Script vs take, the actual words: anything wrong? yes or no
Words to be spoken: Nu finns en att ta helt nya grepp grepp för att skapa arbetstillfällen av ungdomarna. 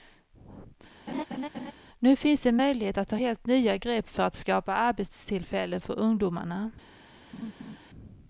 yes